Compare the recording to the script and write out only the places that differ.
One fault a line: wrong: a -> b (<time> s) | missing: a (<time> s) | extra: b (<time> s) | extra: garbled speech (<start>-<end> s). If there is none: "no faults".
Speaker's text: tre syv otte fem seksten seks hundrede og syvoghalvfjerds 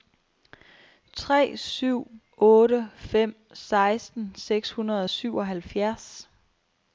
no faults